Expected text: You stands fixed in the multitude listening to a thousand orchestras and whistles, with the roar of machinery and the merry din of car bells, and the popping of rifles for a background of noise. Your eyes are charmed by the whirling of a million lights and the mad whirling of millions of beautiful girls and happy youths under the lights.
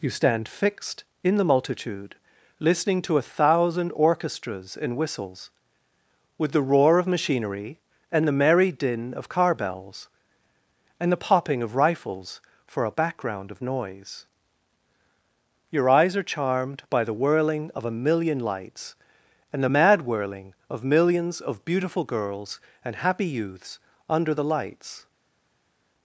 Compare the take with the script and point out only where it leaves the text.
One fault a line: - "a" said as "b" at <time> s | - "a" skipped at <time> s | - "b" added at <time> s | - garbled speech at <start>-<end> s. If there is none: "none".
- "stands" said as "stand" at 0.1 s